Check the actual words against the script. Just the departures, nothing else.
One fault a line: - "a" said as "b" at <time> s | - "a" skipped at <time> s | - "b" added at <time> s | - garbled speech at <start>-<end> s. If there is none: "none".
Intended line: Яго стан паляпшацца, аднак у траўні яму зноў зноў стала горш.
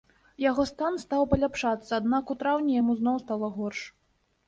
- "стаў" added at 1.0 s
- "зноў" skipped at 3.2 s